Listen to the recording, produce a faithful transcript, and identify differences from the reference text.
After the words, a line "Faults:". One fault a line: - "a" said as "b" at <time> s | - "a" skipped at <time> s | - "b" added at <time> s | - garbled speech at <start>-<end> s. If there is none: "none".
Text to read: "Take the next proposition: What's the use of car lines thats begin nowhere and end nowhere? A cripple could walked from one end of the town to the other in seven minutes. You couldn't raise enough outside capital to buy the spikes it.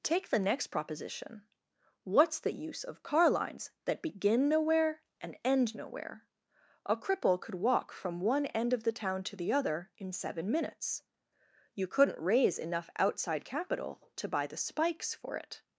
"Take the next proposition: What's the use of car lines that begin nowhere and end nowhere? A cripple could walk from one end of the town to the other in seven minutes. You couldn't raise enough outside capital to buy the spikes for it.
Faults:
- "thats" said as "that" at 3.9 s
- "walked" said as "walk" at 7.6 s
- "for" added at 15.1 s